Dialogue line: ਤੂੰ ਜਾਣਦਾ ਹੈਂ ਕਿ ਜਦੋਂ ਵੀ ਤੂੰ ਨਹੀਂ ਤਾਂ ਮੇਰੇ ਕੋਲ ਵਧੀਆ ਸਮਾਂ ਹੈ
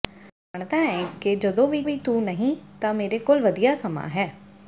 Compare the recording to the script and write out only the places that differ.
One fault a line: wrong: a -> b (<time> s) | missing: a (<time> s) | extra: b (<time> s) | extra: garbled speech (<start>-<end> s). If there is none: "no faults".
extra: ਵੀ (1.8 s)